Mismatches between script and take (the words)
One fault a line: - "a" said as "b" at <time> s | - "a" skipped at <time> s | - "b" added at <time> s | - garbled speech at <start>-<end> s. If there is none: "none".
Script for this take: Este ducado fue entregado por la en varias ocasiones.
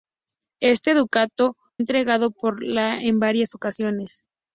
- "fue" skipped at 1.6 s